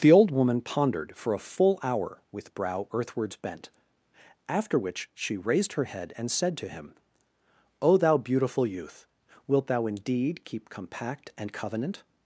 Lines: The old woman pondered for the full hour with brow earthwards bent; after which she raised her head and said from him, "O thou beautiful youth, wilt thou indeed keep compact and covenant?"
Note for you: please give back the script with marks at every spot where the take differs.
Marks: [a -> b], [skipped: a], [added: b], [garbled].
The old woman pondered for [the -> a] full hour with brow earthwards bent; after which she raised her head and said [from -> to] him, "O thou beautiful youth, wilt thou indeed keep compact and covenant?"